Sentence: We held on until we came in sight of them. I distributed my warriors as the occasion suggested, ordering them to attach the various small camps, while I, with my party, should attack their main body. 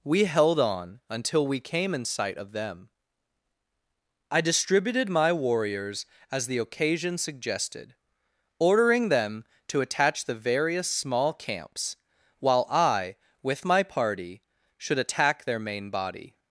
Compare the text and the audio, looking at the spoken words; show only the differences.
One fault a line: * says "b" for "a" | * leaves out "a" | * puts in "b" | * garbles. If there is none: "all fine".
all fine